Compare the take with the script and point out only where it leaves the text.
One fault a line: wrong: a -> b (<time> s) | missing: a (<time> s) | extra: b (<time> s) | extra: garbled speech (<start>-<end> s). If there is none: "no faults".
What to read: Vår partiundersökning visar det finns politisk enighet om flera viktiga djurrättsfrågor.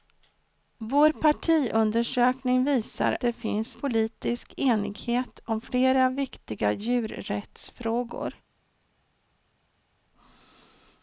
no faults